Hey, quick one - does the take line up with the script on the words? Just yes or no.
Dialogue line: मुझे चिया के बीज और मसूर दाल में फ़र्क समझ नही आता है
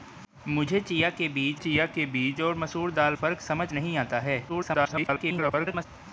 no